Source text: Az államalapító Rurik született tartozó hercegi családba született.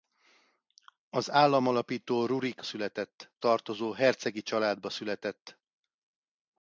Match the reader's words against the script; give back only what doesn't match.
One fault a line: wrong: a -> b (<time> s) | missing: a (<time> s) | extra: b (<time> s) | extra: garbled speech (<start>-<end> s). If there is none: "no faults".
no faults